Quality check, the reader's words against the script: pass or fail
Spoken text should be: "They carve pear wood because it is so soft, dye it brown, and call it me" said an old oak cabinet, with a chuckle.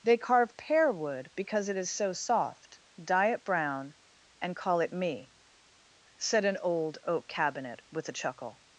pass